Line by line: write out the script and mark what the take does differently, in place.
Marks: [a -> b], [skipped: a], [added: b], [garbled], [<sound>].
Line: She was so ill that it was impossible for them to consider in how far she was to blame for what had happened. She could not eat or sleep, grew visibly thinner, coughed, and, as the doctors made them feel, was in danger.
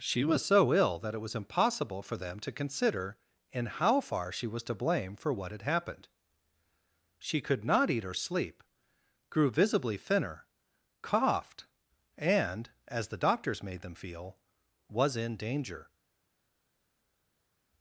She was so ill that it was impossible for them to consider in how far she was to blame for what had happened. She could not eat or sleep, grew visibly thinner, coughed, and, as the doctors made them feel, was in danger.